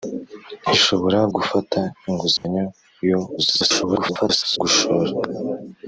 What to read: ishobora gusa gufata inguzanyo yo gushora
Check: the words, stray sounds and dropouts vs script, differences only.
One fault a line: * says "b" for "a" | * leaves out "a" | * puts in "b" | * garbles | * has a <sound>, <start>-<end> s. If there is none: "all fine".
* leaves out "gusa"
* has a dropout, 2.4-2.4 s
* garbles